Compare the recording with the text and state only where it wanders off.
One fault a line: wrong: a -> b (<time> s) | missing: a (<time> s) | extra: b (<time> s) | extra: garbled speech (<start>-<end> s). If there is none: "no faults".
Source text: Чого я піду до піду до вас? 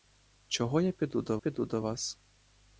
no faults